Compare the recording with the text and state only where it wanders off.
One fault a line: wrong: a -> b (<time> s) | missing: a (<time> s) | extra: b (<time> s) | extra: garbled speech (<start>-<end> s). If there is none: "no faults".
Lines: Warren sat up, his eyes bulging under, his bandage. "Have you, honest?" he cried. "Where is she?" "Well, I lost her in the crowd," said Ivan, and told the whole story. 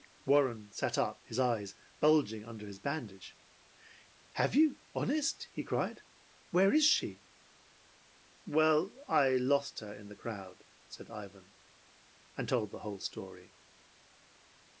no faults